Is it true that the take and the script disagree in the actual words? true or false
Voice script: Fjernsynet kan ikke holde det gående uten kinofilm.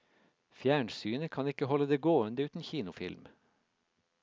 false